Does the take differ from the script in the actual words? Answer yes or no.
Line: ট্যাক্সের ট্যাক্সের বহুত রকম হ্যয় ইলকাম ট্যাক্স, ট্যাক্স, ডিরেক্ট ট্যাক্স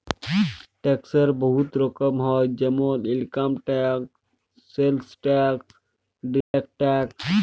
yes